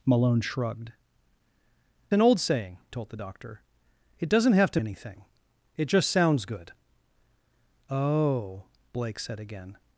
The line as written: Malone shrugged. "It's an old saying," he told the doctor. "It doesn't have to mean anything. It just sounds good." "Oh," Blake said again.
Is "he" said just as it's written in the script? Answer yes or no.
no